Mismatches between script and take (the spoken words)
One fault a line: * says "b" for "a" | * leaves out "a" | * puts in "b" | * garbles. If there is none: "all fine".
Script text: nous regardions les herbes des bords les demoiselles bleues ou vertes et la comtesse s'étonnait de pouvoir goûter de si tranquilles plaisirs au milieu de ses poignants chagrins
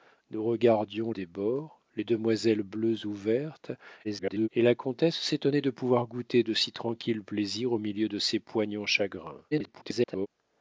* leaves out "les herbes"
* garbles
* garbles